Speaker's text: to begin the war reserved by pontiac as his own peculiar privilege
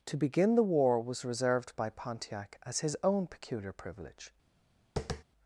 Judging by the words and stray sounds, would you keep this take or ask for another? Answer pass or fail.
fail